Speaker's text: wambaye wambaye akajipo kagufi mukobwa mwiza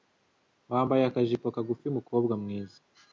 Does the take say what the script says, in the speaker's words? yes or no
no